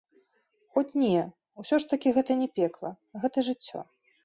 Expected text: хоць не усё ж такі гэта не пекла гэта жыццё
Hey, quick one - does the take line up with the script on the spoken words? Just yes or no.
yes